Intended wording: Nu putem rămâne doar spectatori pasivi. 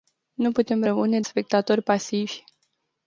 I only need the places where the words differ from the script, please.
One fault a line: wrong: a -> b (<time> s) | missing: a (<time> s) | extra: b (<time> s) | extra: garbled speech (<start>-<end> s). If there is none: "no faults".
missing: doar (1.2 s)